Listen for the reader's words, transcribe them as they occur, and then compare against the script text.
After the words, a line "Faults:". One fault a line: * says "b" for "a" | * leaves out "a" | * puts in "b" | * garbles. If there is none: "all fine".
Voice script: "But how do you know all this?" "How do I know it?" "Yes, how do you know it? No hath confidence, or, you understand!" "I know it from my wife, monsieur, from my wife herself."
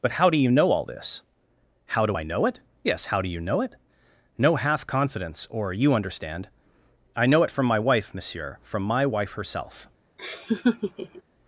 "But how do you know all this?" "How do I know it?" "Yes, how do you know it? No hath confidence, or, you understand!" "I know it from my wife, monsieur, from my wife herself."
Faults:
all fine